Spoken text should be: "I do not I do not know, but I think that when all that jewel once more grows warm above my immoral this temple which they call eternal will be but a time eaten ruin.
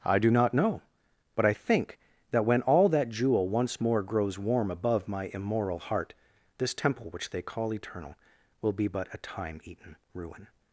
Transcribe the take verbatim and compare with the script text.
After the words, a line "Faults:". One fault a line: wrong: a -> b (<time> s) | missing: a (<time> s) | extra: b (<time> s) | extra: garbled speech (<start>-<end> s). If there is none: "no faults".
"I do not know, but I think that when all that jewel once more grows warm above my immoral heart, this temple which they call eternal will be but a time eaten ruin.
Faults:
missing: I do not (0.6 s)
extra: heart (5.8 s)